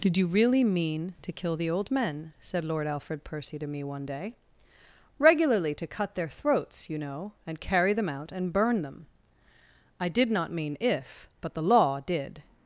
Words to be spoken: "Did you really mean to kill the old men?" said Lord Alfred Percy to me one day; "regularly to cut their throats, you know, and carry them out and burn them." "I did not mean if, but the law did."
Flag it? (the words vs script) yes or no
no